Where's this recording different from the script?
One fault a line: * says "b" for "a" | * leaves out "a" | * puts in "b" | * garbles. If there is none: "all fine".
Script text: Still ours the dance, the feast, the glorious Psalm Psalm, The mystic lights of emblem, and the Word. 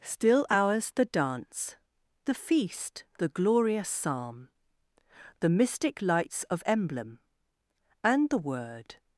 * leaves out "Psalm"